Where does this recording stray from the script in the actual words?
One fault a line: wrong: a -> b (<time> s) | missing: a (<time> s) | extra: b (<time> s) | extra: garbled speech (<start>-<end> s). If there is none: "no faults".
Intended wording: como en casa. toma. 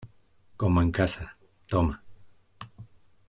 no faults